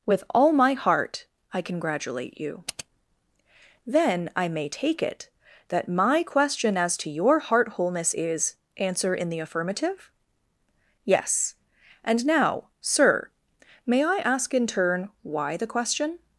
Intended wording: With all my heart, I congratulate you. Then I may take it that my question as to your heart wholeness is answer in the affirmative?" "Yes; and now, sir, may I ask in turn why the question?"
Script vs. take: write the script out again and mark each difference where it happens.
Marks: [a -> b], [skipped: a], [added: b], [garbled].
With all my heart, I congratulate you. Then I may take it that my question as to your heart wholeness is answer in the affirmative?" "Yes; and now, sir, may I ask in turn why the question?"